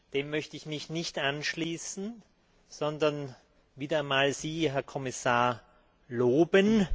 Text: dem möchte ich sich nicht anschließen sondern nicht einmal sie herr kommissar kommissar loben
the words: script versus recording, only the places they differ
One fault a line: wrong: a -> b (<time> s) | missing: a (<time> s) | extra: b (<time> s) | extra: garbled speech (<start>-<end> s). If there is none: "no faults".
wrong: sich -> mich (0.7 s)
wrong: nicht -> wieder (3.8 s)
missing: kommissar (5.6 s)